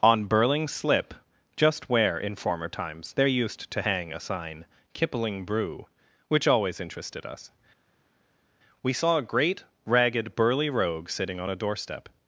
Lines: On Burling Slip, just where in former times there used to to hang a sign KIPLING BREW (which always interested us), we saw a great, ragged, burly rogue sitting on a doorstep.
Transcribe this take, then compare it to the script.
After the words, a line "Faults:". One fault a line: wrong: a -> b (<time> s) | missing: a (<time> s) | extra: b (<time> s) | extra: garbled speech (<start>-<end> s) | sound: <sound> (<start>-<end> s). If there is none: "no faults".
On Burling Slip, just where in former times there used to hang a sign KIPLING BREW (which always interested us), we saw a great, ragged, burly rogue sitting on a doorstep.
Faults:
missing: to (3.8 s)